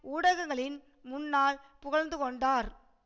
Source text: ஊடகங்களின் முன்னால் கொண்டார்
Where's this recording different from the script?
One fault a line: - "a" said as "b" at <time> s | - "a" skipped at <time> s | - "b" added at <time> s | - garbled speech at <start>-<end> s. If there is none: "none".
- "புகழ்ந்து" added at 1.8 s